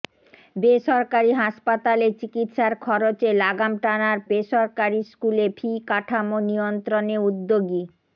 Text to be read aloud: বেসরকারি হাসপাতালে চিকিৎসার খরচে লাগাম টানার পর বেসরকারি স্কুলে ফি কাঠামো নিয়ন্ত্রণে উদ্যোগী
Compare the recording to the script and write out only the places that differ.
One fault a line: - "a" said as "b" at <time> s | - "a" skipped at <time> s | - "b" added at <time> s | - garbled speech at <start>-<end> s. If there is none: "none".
- "পর" skipped at 4.2 s